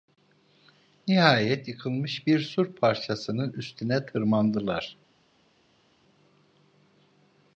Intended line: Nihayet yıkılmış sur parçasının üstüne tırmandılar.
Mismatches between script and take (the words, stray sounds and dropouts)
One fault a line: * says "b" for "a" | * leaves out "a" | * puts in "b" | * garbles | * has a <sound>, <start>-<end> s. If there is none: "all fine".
* puts in "bir"